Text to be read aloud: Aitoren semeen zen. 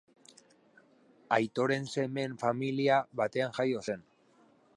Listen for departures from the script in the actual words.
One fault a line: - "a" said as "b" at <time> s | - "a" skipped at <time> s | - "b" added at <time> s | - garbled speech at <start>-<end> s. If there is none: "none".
- "familia batean jaio" added at 2.5 s